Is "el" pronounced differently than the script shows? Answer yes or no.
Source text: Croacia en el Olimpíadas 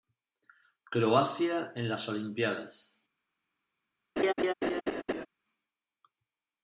yes